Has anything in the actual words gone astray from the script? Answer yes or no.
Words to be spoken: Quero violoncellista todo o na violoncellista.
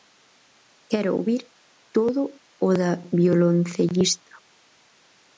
yes